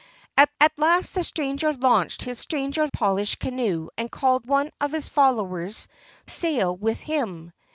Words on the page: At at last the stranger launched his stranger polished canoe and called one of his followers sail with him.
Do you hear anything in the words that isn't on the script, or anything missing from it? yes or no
no